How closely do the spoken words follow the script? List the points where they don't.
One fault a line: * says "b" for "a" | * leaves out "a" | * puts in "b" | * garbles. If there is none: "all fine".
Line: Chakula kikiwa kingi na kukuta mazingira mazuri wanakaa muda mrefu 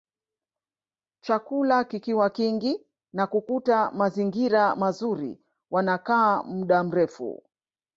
all fine